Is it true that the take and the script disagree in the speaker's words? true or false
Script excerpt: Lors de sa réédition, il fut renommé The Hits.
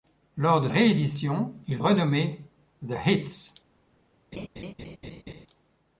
true